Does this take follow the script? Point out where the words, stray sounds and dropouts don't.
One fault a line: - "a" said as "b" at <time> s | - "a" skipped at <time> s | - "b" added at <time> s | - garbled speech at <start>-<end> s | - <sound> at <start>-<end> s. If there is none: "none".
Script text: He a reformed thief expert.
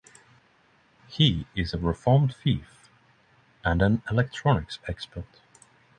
- "is" added at 1.6 s
- "and an electronics" added at 3.6 s